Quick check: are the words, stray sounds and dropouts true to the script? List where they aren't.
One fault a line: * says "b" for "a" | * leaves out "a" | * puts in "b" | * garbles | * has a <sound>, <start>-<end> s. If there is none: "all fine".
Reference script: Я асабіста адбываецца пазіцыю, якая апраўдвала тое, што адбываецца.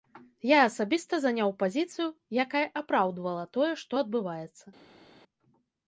* says "заняў" for "адбываецца"